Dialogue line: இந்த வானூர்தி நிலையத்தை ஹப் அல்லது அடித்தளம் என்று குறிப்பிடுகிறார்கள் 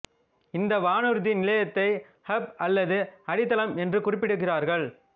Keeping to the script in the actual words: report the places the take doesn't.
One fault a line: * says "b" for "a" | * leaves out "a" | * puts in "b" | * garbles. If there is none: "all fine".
all fine